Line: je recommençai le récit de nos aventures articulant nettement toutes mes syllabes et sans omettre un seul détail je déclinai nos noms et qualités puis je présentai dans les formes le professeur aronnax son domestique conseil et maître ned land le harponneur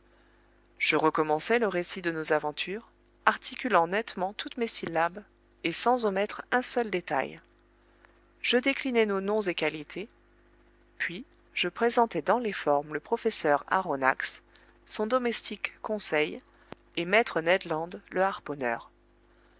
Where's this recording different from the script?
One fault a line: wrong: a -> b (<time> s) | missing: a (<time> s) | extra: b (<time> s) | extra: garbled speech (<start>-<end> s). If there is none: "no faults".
no faults